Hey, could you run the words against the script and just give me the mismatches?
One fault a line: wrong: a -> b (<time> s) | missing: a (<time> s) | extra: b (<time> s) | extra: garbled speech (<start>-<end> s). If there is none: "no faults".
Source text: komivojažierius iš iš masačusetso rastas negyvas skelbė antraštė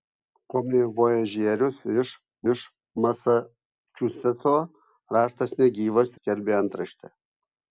no faults